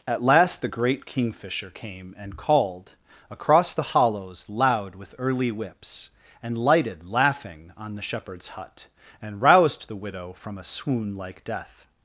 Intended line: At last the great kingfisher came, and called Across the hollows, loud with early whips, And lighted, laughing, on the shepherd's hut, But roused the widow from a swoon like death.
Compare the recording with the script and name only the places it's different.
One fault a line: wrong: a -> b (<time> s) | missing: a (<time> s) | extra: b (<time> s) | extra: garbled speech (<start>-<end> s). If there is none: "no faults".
wrong: But -> And (9.2 s)